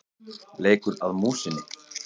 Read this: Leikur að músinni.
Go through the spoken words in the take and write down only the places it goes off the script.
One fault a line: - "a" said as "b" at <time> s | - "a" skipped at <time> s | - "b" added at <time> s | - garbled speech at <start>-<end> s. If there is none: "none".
none